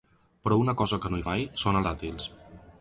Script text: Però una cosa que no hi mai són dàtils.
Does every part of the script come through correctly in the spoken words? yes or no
yes